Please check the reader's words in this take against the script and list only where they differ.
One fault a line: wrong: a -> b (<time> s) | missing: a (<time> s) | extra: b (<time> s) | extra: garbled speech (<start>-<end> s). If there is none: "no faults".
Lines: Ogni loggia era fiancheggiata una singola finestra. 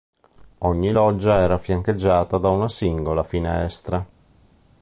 extra: da (2.4 s)